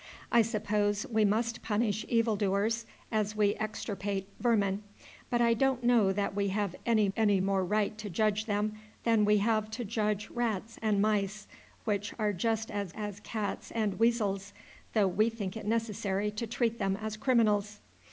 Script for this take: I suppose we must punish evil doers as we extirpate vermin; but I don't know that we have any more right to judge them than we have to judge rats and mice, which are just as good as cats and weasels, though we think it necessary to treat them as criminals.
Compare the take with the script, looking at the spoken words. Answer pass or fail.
fail